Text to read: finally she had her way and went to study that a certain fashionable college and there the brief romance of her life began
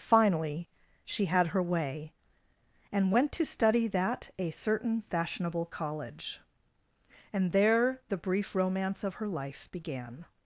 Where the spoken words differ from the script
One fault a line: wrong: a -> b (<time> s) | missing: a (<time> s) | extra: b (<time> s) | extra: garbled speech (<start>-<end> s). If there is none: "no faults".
no faults